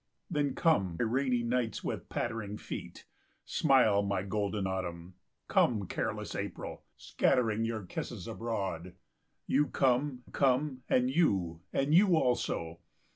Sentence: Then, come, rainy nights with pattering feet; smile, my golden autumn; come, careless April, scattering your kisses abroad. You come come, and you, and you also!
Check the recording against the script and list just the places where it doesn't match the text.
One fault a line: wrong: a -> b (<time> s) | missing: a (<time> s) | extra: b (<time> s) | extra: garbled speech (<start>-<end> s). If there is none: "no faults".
no faults